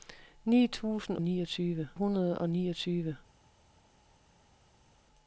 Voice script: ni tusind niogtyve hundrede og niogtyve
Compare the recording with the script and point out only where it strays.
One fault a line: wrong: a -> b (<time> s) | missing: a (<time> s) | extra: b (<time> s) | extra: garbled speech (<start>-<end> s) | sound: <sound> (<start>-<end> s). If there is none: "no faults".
no faults